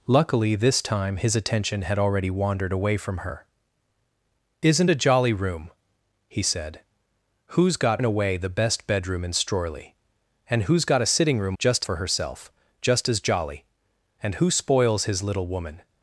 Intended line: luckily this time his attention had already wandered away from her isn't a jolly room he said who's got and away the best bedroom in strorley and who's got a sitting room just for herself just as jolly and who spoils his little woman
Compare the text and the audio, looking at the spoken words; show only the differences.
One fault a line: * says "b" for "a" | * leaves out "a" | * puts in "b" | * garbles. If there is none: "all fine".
all fine